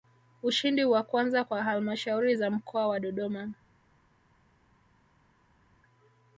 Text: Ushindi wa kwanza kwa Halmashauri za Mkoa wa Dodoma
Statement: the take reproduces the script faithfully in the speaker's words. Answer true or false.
true